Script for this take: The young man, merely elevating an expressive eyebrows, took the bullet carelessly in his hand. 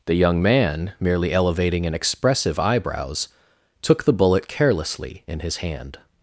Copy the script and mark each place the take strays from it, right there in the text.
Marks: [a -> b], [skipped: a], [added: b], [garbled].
The young man, merely elevating an expressive eyebrows, took the bullet carelessly in his hand.